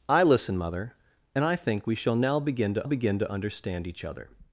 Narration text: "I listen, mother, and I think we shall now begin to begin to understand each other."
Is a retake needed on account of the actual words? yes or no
no